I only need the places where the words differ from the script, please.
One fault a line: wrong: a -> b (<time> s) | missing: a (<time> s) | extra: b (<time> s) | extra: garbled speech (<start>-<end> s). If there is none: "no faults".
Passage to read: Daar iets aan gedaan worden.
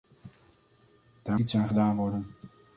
no faults